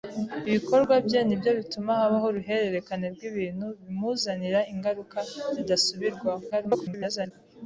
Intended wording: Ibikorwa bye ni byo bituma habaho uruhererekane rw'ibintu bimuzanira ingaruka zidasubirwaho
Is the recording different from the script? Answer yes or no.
yes